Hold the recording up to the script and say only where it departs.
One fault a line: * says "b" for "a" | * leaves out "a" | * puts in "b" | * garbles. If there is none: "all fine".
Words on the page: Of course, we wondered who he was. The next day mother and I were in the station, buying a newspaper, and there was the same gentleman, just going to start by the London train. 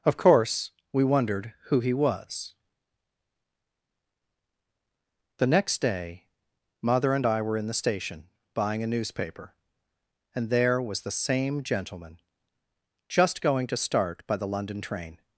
all fine